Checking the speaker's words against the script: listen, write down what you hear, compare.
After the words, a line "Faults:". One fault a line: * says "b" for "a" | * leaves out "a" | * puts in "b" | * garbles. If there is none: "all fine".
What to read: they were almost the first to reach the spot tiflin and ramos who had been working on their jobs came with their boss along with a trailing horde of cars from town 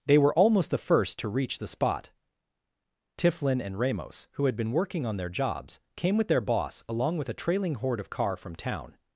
they were almost the first to reach the spot tiflin and ramos who had been working on their jobs came with their boss along with a trailing horde of car from town
Faults:
* says "car" for "cars"